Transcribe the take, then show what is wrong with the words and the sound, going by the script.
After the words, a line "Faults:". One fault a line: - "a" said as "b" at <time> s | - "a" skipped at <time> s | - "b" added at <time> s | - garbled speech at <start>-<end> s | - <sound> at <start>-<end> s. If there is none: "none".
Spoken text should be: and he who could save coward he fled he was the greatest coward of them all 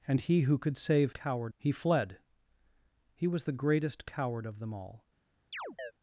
and he who could save coward he fled he was the greatest coward of them all
Faults:
- chirp at 5.5-5.9 s